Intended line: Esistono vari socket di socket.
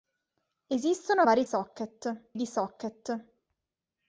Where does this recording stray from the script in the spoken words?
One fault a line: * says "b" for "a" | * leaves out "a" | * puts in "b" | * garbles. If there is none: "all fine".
all fine